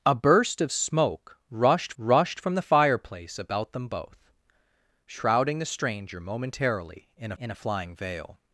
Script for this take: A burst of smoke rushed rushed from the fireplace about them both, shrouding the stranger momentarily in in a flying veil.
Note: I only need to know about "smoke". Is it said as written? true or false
true